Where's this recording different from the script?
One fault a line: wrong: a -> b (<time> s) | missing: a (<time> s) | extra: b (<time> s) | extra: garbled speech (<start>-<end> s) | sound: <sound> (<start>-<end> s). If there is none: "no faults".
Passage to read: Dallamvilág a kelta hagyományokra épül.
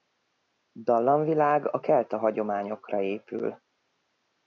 no faults